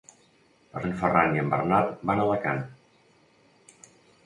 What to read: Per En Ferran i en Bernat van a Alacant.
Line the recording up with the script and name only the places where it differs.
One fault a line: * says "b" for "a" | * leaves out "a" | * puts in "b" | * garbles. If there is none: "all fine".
all fine